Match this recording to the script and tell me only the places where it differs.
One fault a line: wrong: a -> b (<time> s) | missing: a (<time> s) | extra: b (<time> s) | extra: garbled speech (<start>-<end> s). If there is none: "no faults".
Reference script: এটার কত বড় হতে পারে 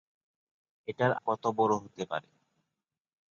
no faults